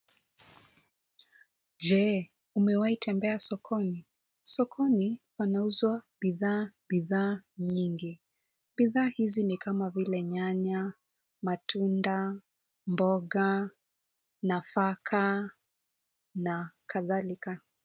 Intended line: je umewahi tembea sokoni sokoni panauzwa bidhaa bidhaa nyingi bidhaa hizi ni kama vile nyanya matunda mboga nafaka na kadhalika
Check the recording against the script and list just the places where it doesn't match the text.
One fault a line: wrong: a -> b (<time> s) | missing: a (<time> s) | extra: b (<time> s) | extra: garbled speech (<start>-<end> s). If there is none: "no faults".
no faults